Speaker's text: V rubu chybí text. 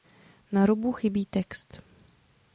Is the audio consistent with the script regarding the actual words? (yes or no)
no